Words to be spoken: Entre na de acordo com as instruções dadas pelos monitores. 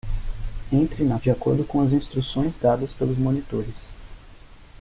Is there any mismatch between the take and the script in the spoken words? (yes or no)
no